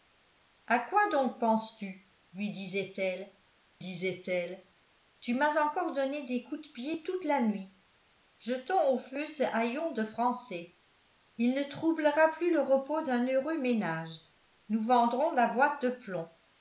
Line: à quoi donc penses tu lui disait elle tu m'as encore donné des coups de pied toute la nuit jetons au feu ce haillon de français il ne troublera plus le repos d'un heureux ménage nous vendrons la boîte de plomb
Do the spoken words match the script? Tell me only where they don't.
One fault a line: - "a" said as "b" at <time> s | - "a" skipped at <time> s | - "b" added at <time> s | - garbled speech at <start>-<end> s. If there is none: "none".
- "disait elle" added at 3.8 s